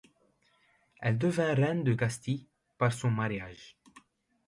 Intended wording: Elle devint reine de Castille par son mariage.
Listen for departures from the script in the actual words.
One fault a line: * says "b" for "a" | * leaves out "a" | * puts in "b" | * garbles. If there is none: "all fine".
all fine